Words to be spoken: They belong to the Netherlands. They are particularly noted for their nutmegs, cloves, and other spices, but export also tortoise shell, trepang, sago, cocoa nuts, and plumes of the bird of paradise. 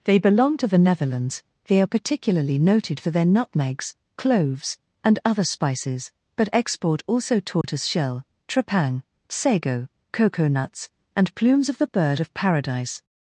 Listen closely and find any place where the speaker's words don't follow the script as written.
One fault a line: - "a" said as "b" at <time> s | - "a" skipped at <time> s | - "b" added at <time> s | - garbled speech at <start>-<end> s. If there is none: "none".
none